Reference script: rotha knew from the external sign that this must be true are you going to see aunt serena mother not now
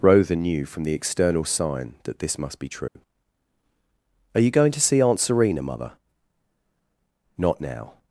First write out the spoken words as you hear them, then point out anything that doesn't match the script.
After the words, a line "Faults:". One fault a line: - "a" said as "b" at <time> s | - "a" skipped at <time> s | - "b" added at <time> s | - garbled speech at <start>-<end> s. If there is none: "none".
rotha knew from the external sign that this must be true are you going to see aunt serena mother not now
Faults:
none